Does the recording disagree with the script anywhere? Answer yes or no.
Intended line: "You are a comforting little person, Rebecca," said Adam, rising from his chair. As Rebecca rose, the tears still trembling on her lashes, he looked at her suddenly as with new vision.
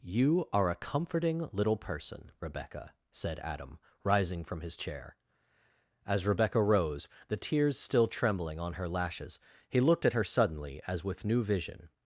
no